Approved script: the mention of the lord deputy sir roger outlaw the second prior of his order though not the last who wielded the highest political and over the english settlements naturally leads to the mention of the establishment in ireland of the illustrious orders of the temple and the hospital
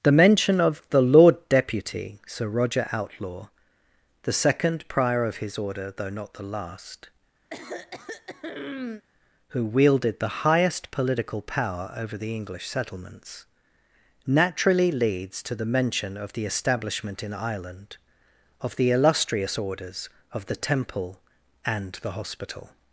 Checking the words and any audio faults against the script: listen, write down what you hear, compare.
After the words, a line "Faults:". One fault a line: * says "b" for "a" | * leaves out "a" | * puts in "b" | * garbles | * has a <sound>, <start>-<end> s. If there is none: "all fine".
the mention of the lord deputy sir roger outlaw the second prior of his order though not the last who wielded the highest political power over the english settlements naturally leads to the mention of the establishment in ireland of the illustrious orders of the temple and the hospital
Faults:
* has a throat clearing, 7.5-9.0 s
* says "power" for "and"